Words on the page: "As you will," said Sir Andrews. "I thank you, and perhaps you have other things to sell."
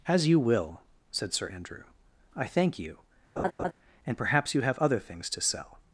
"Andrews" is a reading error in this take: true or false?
true